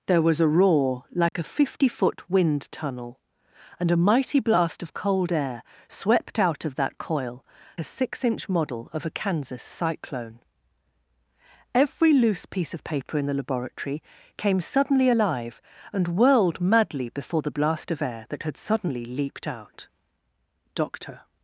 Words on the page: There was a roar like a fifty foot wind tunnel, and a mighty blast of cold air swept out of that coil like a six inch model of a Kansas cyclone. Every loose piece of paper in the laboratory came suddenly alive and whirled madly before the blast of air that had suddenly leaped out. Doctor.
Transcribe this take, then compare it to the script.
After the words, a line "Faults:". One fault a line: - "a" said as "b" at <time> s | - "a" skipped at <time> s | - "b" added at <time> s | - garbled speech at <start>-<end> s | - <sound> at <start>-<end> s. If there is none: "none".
There was a roar like a fifty foot wind tunnel, and a mighty blast of cold air swept out of that coil a six inch model of a Kansas cyclone. Every loose piece of paper in the laboratory came suddenly alive and whirled madly before the blast of air that had suddenly leaped out. Doctor.
Faults:
- dropout at 1.3-1.3 s
- "like" skipped at 7.5 s